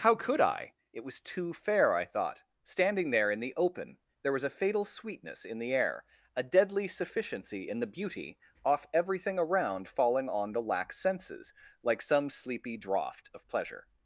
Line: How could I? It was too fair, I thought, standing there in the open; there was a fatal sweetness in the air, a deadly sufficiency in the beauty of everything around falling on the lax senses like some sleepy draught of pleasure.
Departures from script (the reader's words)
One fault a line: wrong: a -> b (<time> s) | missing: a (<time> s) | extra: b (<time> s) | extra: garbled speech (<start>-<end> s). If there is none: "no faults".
wrong: of -> off (8.7 s)